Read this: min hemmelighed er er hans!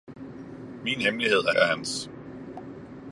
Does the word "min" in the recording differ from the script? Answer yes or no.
no